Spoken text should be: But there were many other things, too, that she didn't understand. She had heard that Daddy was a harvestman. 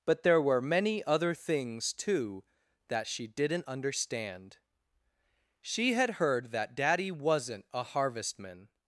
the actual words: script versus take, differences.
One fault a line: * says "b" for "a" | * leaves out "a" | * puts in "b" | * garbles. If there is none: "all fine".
* says "wasn't" for "was"